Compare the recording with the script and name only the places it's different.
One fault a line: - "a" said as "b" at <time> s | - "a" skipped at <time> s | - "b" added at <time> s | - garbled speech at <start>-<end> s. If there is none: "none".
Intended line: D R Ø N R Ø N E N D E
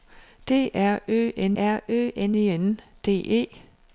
none